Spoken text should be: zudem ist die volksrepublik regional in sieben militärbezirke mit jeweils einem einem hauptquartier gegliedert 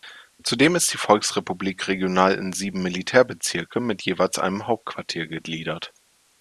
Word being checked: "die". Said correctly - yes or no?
yes